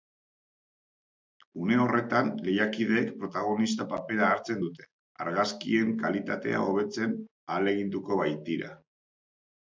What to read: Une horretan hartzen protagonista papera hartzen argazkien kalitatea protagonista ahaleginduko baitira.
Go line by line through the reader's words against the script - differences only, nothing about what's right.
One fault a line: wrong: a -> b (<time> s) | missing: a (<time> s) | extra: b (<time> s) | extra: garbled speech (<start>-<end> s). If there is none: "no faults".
wrong: hartzen -> lehiakideek (2.5 s)
extra: dute (4.6 s)
wrong: protagonista -> hobetzen (6.7 s)